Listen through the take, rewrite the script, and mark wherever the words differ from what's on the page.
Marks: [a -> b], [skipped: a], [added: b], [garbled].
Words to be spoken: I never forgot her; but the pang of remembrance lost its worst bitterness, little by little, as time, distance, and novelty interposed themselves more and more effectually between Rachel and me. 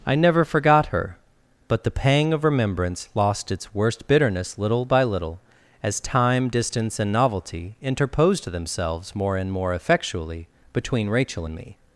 I never forgot her; but the pang of remembrance lost its worst bitterness, little by little, as time, distance, and novelty interposed themselves more and more effectually between Rachel and me.